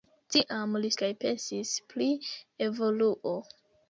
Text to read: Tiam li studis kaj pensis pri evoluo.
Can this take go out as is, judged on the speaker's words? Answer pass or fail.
fail